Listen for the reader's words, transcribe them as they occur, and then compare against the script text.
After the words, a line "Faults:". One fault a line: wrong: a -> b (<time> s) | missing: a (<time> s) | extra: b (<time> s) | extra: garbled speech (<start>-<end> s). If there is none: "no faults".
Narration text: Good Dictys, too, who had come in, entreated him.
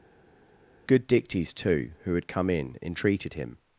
Good Dictys, too, who had come in, entreated him.
Faults:
no faults